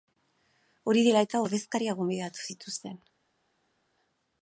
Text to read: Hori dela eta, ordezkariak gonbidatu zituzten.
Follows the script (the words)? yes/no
yes